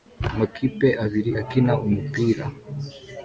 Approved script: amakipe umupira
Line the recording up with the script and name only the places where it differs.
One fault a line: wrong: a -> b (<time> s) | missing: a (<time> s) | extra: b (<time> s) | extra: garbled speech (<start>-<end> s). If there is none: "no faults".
extra: abiri akina (1.0 s)